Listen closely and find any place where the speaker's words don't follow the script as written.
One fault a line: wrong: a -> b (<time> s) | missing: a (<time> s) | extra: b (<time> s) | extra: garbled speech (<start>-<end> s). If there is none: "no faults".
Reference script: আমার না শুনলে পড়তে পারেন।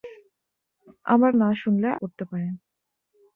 no faults